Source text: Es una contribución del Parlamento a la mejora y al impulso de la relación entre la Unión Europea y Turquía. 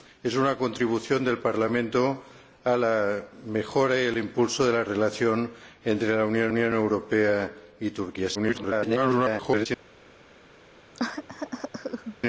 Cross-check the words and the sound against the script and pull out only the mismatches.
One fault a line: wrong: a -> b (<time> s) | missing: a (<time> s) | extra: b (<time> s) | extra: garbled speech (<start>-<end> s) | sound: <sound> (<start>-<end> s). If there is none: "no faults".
extra: Unión (6.5 s)
extra: garbled speech (8.3-9.7 s)
sound: cough (10.9-12.2 s)